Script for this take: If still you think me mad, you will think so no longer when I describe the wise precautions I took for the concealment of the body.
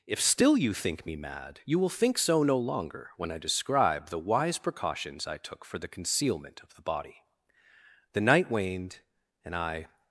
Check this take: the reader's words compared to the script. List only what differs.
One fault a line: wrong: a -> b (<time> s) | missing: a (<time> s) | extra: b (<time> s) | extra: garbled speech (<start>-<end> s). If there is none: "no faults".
extra: The night waned and I (8.1 s)